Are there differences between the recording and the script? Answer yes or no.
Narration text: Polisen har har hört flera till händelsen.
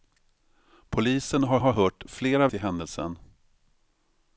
no